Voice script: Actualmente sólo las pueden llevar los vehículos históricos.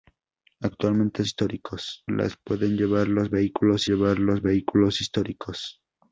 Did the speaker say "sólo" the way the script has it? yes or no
no